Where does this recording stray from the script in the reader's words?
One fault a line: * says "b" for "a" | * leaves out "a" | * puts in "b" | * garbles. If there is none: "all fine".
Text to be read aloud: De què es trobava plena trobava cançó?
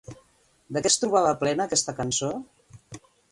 * says "aquesta" for "trobava"